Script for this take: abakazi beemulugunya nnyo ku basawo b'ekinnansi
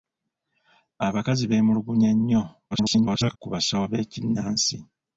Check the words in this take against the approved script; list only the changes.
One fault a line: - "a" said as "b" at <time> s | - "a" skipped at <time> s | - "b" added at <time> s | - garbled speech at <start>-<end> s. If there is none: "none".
- garbled speech at 2.7-3.4 s